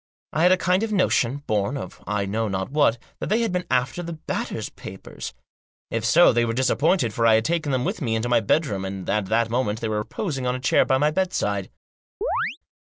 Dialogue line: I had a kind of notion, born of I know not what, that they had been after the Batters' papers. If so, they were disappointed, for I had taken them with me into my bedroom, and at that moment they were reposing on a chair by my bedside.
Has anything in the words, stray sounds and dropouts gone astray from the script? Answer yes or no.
yes